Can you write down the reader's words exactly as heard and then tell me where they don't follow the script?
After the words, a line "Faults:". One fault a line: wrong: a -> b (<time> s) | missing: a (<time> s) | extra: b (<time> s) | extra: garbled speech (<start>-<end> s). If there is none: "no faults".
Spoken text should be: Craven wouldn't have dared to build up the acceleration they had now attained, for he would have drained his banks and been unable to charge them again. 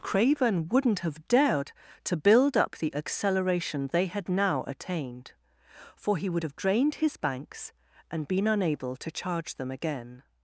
Craven wouldn't have dared to build up the acceleration they had now attained, for he would have drained his banks and been unable to charge them again.
Faults:
no faults